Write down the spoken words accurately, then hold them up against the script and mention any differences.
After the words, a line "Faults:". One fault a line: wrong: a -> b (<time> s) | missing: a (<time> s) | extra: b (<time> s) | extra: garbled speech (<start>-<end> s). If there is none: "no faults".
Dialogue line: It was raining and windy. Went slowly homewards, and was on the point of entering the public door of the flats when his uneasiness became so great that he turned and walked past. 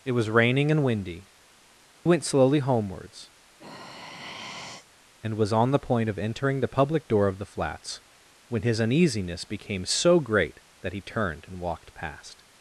It was raining and windy. Went slowly homewards, and was on the point of entering the public door of the flats when his uneasiness became so great that he turned and walked past.
Faults:
no faults